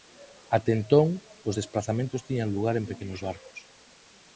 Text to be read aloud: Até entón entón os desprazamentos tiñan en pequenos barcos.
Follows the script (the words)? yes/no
no